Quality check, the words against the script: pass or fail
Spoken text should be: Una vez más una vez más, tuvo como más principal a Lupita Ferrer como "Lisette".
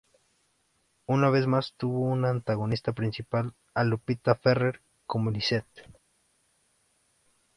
fail